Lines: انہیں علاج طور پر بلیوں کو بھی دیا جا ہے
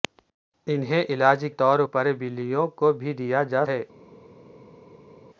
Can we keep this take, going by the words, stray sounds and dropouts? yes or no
yes